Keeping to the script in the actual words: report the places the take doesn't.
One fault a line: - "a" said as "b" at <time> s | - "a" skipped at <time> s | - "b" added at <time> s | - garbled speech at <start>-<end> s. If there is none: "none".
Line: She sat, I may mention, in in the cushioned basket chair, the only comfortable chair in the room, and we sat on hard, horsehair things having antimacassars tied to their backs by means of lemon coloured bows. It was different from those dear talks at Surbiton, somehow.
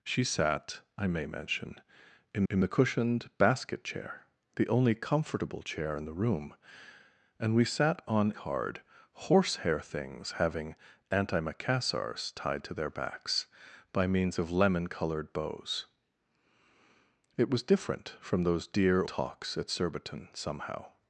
none